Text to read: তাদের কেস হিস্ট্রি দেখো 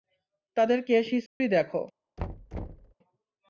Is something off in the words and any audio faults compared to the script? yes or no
yes